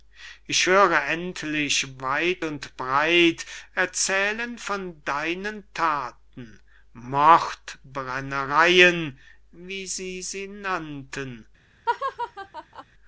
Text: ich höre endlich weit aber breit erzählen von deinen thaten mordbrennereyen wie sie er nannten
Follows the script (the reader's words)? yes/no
no